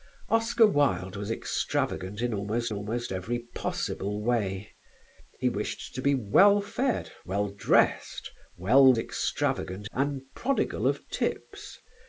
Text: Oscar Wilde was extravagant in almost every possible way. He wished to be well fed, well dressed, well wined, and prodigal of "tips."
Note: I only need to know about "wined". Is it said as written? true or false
false